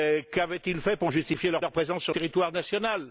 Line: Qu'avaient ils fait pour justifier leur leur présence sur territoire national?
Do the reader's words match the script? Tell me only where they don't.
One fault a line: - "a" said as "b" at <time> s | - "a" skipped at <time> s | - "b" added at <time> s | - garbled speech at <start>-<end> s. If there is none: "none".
none